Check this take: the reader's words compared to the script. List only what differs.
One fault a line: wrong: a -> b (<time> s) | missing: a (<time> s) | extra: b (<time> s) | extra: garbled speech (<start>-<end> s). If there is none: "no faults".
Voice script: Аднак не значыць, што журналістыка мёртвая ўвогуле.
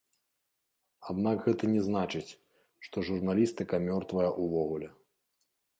extra: гэта (1.5 s)